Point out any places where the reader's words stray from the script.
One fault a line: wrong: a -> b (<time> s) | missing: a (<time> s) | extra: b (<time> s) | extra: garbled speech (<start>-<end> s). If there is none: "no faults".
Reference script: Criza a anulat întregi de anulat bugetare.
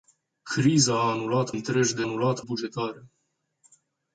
no faults